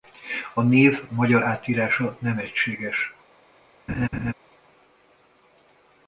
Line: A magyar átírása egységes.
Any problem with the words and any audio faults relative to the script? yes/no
yes